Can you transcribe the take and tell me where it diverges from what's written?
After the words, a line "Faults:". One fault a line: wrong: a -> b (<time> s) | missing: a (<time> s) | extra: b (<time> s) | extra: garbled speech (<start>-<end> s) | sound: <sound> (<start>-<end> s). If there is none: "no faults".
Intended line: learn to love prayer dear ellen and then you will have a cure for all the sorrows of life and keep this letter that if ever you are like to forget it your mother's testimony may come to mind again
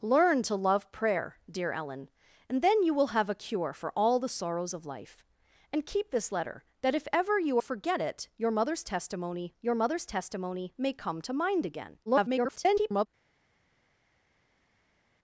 learn to love prayer dear ellen and then you will have a cure for all the sorrows of life and keep this letter that if ever you forget it your mother's testimony your mother's testimony may come to mind again [garbled]
Faults:
wrong: are like to forget it -> forget it your mother's testimony (7.6 s)
extra: garbled speech (12.1-13.1 s)